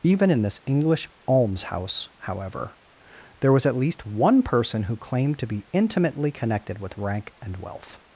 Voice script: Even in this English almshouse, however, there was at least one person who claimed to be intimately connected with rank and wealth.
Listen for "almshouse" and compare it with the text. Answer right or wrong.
right